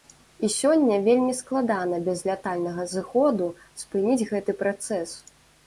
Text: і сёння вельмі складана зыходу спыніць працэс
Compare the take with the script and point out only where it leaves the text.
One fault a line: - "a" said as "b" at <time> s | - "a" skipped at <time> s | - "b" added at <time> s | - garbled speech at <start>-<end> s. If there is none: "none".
- "без лятальнага" added at 2.1 s
- "гэты" added at 4.3 s